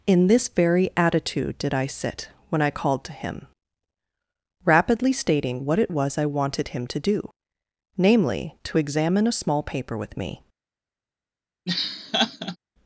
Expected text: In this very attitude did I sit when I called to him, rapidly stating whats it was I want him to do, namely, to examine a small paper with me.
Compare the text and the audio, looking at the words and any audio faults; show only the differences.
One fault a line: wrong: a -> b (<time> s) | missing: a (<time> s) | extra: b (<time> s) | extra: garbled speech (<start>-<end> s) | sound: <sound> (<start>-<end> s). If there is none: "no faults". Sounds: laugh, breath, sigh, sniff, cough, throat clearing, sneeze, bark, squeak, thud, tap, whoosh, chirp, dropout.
wrong: whats -> what (5.6 s)
wrong: want -> wanted (6.2 s)
sound: laugh (11.7-12.6 s)